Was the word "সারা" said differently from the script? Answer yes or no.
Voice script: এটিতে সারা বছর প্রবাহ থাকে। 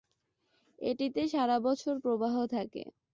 no